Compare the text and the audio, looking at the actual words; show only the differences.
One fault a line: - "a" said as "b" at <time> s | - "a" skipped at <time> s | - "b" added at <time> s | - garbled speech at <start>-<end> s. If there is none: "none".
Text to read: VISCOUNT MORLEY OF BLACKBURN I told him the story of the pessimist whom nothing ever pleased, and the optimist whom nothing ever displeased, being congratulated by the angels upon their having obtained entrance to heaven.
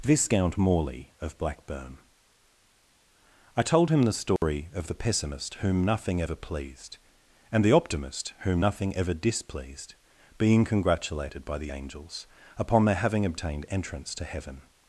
none